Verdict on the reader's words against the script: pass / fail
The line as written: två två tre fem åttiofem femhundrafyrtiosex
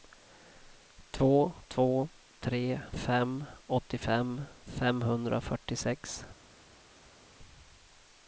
pass